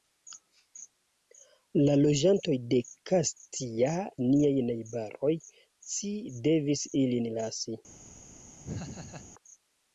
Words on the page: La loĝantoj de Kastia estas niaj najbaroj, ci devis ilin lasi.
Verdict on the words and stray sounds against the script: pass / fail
fail